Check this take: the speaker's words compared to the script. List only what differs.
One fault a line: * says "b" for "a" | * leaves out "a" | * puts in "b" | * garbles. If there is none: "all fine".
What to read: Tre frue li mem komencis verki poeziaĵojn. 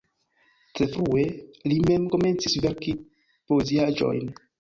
all fine